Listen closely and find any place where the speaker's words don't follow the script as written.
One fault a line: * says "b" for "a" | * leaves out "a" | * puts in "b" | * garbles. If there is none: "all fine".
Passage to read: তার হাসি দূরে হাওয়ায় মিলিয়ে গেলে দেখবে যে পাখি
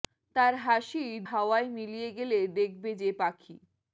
* leaves out "দূরে"